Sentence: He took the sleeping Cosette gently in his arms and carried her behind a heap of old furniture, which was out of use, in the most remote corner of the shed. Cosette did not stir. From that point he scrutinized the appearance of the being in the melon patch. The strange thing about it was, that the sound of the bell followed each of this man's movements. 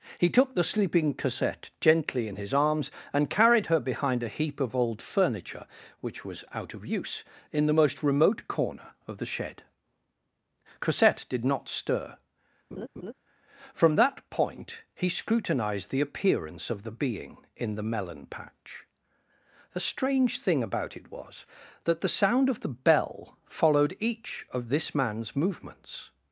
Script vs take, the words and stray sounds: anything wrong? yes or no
yes